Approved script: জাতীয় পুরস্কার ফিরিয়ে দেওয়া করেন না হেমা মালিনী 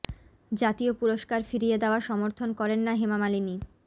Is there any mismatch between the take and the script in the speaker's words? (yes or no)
yes